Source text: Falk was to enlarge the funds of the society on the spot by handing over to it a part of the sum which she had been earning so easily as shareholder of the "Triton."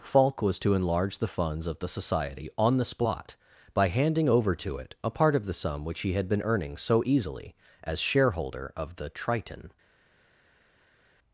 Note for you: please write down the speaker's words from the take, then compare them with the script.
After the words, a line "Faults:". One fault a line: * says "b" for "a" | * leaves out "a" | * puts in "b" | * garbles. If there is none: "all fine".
Falk was to enlarge the funds of the society on the spot by handing over to it a part of the sum which he had been earning so easily as shareholder of the "Triton."
Faults:
* says "he" for "she"